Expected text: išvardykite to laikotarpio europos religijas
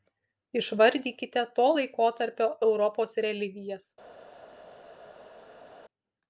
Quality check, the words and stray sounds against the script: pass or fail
pass